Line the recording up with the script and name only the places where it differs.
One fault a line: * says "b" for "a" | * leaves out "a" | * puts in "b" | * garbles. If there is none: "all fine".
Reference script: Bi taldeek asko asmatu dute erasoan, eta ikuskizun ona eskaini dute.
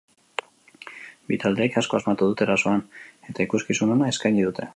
all fine